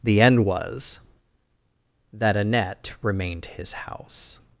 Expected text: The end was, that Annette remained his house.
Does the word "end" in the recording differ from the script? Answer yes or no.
no